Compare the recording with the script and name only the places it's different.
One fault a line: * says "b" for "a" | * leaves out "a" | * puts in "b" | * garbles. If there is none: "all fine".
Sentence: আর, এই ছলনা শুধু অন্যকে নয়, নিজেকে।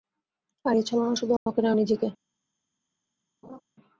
all fine